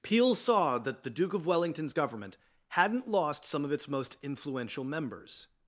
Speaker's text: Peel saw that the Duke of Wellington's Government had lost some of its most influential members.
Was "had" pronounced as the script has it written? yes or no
no